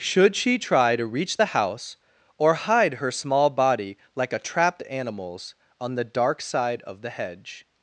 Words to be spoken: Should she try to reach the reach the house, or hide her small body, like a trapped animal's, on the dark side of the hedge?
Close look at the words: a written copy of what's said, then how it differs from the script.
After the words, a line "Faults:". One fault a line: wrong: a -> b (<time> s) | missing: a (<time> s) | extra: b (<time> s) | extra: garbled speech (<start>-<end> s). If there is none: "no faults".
Should she try to reach the house, or hide her small body, like a trapped animal's, on the dark side of the hedge?
Faults:
missing: reach the (1.5 s)